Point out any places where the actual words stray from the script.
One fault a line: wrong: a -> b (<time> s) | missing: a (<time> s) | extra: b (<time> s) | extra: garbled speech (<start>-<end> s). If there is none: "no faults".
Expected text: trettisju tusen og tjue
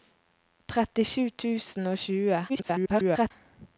extra: garbled speech (2.5-3.3 s)